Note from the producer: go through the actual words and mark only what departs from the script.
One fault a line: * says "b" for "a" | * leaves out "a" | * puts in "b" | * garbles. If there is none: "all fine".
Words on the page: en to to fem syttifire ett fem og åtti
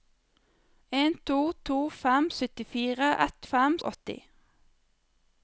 all fine